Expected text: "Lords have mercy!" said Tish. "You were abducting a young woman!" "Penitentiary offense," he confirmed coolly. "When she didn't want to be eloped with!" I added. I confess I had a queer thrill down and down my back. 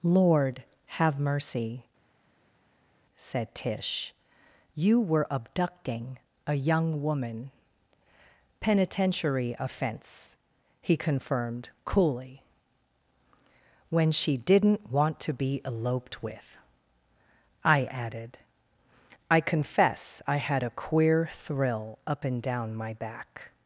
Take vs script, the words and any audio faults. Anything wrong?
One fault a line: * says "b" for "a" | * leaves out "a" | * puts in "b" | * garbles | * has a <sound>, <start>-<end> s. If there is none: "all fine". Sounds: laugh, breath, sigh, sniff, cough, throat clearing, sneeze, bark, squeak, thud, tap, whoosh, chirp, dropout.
* says "Lord" for "Lords"
* says "up" for "down"